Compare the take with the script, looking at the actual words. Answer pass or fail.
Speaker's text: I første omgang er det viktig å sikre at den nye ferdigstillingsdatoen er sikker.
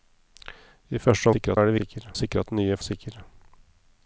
fail